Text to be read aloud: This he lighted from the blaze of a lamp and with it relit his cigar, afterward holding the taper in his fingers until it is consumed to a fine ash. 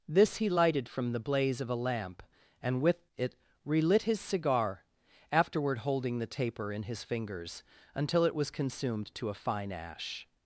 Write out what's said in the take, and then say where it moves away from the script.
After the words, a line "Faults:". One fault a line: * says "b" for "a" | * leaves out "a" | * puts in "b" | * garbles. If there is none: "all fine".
This he lighted from the blaze of a lamp and with it relit his cigar, afterward holding the taper in his fingers until it was consumed to a fine ash.
Faults:
* says "was" for "is"